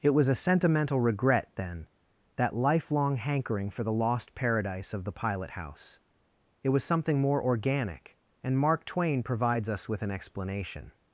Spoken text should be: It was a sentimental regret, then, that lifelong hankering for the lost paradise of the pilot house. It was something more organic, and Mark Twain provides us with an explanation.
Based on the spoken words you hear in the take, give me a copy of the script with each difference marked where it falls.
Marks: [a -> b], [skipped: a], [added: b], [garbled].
It was a sentimental regret, then, that lifelong hankering for the lost paradise of the pilot house. It was something more organic, and Mark Twain provides us with an explanation.